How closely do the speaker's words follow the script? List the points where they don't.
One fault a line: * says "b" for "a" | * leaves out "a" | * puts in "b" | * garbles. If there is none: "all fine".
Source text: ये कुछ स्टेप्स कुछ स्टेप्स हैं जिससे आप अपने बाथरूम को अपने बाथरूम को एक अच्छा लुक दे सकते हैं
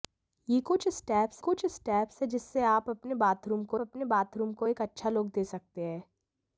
all fine